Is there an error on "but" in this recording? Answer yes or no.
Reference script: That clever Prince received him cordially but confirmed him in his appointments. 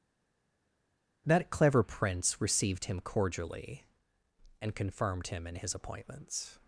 yes